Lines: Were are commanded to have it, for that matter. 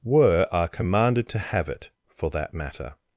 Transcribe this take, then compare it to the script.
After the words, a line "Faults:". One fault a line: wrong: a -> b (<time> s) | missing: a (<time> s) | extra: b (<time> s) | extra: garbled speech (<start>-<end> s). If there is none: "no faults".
Were are commanded to have it, for that matter.
Faults:
no faults